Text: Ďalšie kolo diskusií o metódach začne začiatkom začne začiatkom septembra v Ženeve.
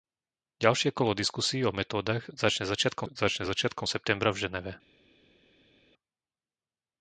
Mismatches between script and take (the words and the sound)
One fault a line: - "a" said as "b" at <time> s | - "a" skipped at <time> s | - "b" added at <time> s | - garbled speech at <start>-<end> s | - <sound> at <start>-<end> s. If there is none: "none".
none